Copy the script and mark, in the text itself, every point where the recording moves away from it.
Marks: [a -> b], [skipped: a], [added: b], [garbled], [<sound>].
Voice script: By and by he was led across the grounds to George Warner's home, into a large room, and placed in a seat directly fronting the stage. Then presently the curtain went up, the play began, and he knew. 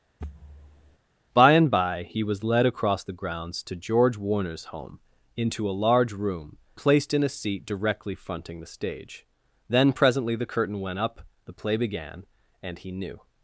[thud] By and by he was led across the grounds to George Warner's home, into a large room, [skipped: and] placed in a seat directly fronting the stage. Then presently the curtain went up, the play began, and he knew.